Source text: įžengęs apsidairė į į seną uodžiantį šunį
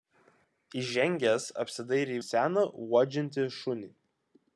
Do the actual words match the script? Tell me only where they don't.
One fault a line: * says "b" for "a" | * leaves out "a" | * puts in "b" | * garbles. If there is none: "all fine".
all fine